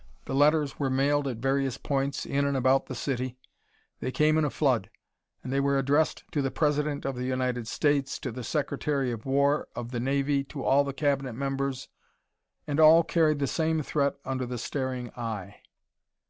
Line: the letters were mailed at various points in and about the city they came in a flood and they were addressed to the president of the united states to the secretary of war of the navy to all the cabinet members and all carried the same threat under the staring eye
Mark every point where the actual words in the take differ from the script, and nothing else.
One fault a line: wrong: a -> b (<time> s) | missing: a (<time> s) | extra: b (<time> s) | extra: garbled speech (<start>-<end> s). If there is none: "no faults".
no faults